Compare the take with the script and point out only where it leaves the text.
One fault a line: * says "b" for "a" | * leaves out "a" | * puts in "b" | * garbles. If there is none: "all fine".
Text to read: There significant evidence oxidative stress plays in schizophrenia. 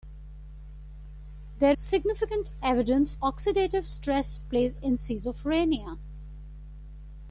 all fine